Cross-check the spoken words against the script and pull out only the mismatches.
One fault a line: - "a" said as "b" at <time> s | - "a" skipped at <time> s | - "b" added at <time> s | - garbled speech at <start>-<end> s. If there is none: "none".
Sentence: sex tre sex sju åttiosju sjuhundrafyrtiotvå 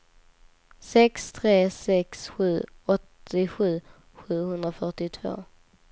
none